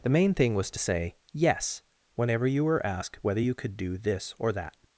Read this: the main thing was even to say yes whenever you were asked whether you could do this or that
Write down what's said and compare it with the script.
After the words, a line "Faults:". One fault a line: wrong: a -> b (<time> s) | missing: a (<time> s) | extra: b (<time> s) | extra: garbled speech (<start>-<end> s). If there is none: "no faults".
the main thing was to say yes whenever you were asked whether you could do this or that
Faults:
missing: even (0.7 s)